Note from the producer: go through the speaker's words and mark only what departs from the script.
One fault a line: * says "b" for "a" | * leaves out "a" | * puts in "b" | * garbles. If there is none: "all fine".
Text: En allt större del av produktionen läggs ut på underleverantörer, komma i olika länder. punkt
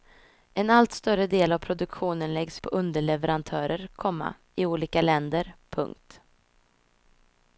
* leaves out "ut"